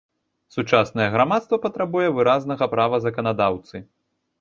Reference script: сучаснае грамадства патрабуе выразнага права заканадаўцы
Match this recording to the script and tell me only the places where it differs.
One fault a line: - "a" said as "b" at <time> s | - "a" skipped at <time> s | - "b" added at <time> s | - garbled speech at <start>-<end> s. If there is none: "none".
none